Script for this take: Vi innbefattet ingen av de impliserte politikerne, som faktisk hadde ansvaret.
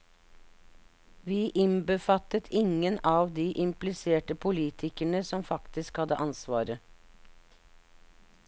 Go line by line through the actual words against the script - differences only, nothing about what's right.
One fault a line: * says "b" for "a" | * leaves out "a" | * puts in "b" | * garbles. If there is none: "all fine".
all fine